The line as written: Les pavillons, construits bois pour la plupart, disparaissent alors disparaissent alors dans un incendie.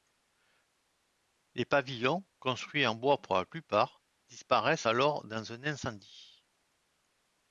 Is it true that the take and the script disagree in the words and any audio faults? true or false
true